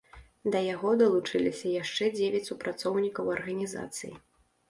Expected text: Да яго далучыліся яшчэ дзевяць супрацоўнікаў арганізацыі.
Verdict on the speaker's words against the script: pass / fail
pass